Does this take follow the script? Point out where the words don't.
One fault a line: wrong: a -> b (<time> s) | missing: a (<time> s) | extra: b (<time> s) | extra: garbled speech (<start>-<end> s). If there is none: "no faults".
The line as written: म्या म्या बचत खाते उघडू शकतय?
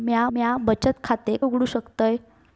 no faults